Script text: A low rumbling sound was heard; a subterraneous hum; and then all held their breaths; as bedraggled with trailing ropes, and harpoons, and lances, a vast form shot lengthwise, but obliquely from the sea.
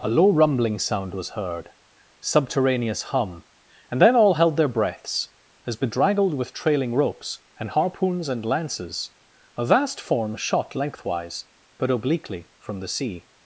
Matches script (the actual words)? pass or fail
fail